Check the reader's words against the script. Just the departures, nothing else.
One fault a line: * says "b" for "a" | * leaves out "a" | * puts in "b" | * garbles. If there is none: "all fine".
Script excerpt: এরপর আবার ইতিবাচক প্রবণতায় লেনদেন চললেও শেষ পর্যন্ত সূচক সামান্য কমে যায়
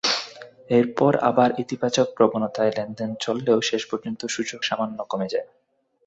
all fine